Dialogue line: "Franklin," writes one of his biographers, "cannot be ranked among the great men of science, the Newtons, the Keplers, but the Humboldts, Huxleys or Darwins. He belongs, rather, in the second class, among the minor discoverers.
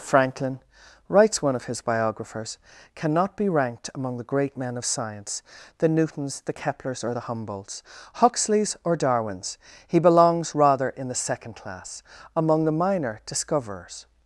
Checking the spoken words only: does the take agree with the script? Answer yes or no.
no